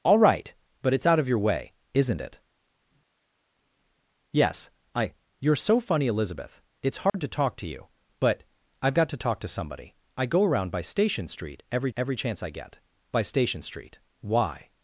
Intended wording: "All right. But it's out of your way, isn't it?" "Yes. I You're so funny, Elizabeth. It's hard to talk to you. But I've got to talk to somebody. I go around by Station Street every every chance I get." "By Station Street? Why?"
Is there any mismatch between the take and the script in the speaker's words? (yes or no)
no